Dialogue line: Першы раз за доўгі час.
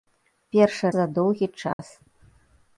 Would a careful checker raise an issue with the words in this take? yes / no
yes